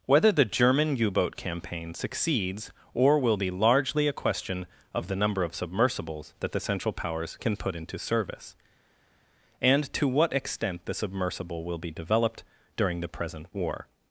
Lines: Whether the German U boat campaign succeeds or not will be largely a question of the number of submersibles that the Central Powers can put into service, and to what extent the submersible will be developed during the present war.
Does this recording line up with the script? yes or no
no